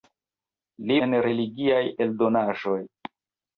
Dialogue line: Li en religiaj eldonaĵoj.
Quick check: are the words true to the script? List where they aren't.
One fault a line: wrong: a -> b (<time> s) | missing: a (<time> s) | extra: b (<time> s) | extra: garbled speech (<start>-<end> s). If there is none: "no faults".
no faults